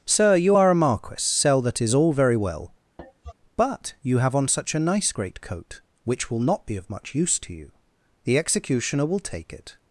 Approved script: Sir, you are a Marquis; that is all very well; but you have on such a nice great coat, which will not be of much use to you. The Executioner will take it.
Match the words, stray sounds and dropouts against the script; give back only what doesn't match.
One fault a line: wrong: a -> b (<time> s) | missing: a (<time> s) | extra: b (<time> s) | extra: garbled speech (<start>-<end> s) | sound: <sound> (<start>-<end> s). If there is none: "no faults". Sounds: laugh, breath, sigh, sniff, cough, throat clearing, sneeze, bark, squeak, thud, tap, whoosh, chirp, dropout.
extra: sell (1.2 s)
sound: cough (3.0-3.3 s)